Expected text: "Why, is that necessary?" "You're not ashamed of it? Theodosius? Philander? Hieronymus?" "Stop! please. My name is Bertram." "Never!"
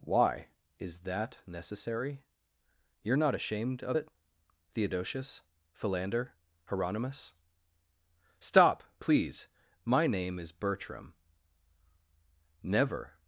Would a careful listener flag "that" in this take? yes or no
no